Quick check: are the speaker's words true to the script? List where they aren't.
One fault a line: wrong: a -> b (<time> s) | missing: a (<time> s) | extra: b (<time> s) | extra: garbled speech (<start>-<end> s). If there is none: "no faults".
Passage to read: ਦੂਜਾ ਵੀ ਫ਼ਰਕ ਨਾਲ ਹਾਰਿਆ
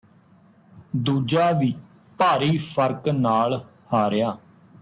extra: ਭਾਰੀ (2.2 s)